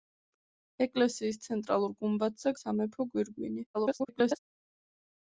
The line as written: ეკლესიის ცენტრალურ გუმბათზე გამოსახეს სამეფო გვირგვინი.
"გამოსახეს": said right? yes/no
no